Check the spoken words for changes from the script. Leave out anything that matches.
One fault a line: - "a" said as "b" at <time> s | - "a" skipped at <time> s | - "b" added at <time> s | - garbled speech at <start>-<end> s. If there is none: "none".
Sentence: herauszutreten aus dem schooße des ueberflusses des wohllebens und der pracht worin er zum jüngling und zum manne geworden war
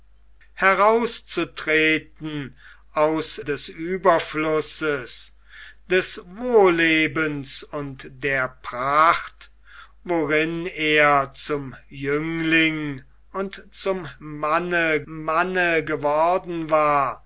- "dem schooße" skipped at 3.4 s
- "manne" added at 15.1 s